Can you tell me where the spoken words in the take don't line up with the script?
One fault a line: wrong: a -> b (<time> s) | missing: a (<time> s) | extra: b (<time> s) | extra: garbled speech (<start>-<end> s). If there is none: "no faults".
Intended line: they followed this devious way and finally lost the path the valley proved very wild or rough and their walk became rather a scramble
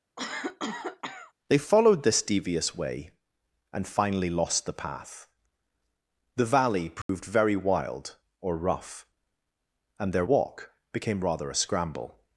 no faults